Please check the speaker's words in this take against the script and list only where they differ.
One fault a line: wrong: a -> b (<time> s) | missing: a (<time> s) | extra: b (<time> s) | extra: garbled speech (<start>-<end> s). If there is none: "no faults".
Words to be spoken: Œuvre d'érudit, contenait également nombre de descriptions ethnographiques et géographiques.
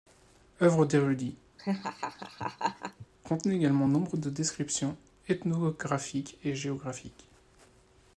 no faults